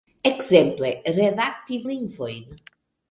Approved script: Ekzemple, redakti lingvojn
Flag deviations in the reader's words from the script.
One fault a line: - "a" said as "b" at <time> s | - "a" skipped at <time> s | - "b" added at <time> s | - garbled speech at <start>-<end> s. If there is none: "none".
none